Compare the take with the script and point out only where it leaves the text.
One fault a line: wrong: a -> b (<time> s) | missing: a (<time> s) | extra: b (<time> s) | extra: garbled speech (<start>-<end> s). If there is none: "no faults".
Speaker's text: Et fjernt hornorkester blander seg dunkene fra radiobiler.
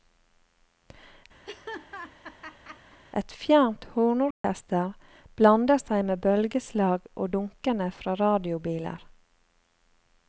extra: med bølgeslag og (6.1 s)